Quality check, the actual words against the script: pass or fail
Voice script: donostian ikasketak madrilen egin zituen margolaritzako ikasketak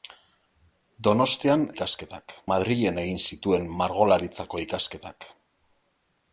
pass